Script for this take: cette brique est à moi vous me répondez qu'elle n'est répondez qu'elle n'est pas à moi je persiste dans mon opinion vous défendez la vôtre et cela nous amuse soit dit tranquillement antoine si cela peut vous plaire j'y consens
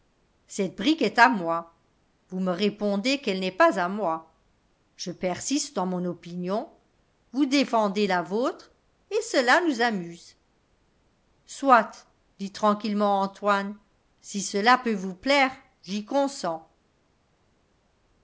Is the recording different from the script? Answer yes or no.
yes